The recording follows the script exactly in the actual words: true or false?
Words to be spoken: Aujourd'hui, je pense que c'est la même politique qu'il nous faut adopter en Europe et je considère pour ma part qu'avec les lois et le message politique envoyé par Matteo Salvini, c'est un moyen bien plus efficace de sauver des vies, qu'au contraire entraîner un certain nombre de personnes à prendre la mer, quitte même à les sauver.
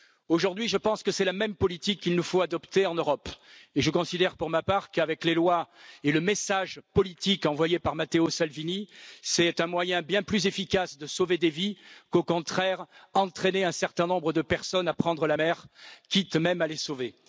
true